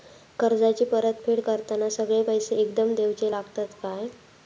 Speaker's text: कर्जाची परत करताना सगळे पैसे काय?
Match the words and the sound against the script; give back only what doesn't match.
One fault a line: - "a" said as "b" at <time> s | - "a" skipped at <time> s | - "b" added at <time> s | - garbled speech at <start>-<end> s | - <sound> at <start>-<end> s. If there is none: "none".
- "फेड" added at 1.2 s
- "एकदम देवचे लागतत" added at 2.5 s